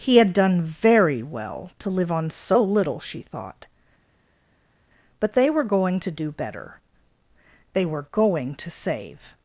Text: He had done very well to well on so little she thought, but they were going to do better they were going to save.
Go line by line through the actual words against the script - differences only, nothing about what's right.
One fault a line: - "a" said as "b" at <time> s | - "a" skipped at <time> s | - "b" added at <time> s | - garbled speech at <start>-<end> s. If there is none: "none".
- "well" said as "live" at 1.9 s